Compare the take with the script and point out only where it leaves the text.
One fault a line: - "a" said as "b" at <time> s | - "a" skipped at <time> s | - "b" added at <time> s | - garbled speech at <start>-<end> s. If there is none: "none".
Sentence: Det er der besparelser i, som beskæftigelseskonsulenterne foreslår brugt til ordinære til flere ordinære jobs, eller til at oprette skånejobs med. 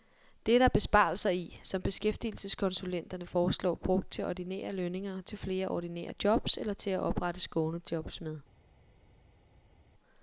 - "lønninger" added at 4.7 s